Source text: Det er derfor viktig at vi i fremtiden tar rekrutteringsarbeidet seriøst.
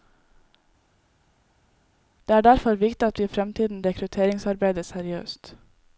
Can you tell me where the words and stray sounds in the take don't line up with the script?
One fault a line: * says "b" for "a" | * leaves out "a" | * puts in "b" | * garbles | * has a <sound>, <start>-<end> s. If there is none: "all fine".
* leaves out "tar"